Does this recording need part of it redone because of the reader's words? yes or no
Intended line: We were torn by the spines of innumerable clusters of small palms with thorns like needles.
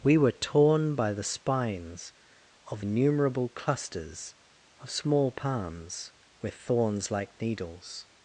no